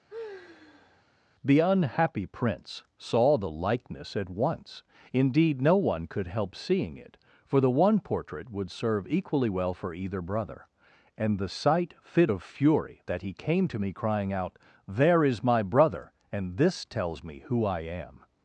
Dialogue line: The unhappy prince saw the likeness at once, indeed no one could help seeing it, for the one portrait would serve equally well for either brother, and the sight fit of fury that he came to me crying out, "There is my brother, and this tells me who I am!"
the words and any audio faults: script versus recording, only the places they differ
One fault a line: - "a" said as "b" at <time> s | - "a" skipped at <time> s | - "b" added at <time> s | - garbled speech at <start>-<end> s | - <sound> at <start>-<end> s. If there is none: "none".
- sigh at 0.1-1.0 s